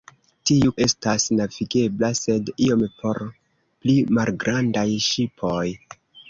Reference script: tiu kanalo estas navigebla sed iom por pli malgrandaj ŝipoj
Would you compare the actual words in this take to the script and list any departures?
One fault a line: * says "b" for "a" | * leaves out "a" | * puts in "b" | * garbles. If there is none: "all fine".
* leaves out "kanalo"